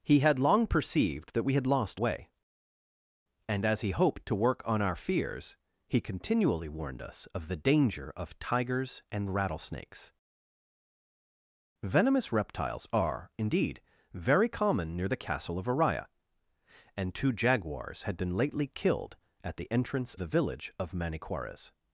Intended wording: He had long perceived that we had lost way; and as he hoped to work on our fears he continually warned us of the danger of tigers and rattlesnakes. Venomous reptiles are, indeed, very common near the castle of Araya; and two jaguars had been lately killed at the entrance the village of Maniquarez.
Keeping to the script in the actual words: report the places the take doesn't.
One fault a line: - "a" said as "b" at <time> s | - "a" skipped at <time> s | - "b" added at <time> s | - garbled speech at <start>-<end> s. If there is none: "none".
none